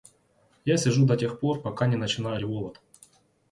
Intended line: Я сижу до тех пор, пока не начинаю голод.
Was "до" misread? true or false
false